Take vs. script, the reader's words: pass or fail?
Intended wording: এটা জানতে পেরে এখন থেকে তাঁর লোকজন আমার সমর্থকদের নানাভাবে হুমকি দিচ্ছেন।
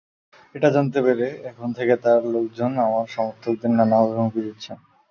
pass